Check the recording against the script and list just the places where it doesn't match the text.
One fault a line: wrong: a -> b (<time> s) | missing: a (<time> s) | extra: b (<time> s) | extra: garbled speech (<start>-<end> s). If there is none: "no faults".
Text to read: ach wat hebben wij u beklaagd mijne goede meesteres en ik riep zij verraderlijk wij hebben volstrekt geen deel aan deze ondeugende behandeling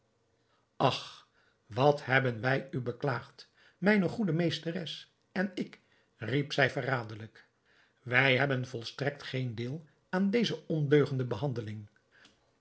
no faults